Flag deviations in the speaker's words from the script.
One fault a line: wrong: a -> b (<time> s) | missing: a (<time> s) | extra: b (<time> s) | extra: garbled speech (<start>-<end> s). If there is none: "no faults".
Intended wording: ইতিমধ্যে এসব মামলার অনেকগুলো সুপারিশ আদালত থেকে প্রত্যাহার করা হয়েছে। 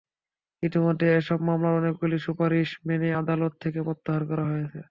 extra: মেনে (2.9 s)